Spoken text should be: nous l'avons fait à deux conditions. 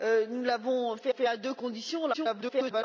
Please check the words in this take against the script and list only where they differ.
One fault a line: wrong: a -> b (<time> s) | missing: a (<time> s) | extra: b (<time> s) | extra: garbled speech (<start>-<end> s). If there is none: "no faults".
extra: fait (1.1 s)
extra: garbled speech (2.1-2.8 s)